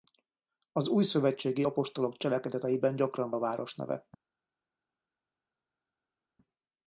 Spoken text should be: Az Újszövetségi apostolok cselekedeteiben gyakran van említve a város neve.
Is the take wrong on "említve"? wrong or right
wrong